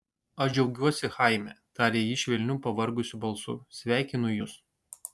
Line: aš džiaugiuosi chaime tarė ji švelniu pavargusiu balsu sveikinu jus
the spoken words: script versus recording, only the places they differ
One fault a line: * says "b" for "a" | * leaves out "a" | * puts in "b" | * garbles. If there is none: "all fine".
all fine